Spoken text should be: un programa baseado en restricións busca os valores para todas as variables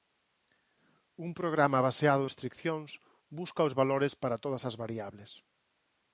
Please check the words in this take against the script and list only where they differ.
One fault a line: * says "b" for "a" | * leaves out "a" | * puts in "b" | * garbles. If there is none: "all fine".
* leaves out "en"